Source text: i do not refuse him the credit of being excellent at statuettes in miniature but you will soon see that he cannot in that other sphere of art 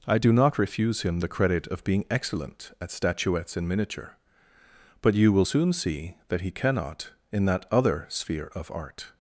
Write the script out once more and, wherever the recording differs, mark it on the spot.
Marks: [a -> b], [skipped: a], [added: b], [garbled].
i do not refuse him the credit of being excellent at statuettes in miniature but you will soon see that he cannot in that other sphere of art